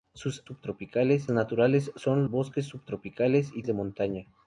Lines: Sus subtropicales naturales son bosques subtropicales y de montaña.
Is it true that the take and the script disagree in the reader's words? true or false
false